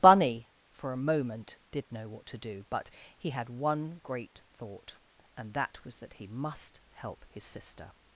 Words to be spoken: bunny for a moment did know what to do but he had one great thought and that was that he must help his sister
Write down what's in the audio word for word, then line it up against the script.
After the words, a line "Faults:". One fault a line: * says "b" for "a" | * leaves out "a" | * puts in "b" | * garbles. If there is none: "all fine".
bunny for a moment did know what to do but he had one great thought and that was that he must help his sister
Faults:
all fine